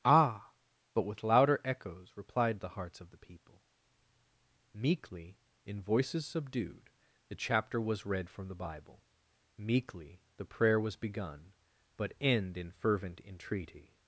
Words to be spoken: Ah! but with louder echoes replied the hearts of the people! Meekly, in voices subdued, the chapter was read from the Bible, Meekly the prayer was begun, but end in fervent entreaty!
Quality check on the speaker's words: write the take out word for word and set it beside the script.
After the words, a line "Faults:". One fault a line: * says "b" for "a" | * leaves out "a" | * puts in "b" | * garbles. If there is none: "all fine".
Ah! but with louder echoes replied the hearts of the people! Meekly, in voices subdued, the chapter was read from the Bible, Meekly the prayer was begun, but end in fervent entreaty!
Faults:
all fine